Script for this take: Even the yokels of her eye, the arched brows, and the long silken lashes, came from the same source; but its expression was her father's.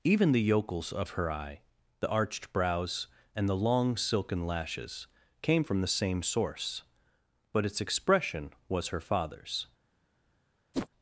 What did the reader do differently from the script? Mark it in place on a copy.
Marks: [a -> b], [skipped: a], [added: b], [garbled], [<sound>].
Even the yokels of her eye, the arched brows, and the long silken lashes, came from the same source; but its expression was her father's. [whoosh]